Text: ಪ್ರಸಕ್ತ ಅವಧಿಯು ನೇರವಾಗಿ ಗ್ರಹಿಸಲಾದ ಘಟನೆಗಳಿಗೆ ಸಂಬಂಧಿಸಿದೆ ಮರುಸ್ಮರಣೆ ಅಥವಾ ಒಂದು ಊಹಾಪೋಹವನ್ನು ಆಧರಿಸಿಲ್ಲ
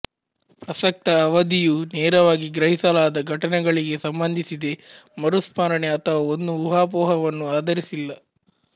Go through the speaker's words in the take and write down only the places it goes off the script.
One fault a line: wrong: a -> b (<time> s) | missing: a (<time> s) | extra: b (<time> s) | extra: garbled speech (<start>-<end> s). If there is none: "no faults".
no faults